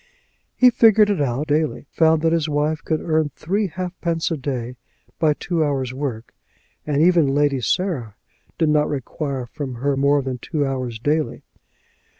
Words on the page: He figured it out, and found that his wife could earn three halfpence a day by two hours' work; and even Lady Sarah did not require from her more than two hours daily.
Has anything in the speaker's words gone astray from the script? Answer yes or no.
yes